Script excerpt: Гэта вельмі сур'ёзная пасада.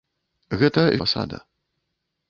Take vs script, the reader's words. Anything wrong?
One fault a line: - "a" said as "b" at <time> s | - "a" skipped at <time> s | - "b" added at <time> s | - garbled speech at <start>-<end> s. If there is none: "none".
- "вельмі сур'ёзная" skipped at 0.8 s